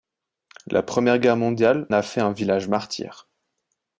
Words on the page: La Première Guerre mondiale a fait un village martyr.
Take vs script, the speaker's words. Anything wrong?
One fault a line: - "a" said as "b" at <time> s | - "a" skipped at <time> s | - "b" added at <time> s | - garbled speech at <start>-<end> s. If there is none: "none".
none